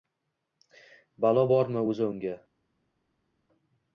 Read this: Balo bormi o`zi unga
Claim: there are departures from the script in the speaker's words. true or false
false